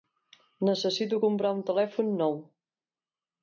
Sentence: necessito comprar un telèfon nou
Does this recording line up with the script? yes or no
yes